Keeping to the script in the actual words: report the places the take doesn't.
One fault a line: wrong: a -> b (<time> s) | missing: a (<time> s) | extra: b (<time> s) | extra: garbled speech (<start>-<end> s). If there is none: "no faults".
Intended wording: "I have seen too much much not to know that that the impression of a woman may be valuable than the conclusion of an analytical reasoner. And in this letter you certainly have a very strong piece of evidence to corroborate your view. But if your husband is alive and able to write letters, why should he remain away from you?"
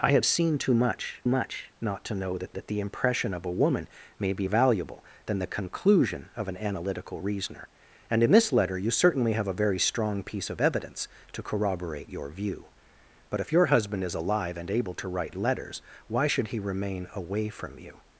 no faults